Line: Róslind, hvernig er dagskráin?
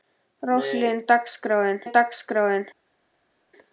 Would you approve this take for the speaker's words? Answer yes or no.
no